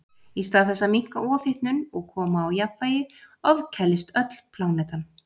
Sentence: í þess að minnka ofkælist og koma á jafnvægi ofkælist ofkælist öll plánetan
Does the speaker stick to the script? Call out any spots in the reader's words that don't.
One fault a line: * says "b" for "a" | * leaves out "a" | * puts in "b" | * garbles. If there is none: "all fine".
* puts in "stað"
* says "ofhitnun" for "ofkælist"
* leaves out "ofkælist"